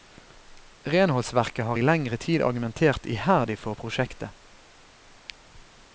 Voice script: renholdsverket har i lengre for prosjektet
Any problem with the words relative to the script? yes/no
yes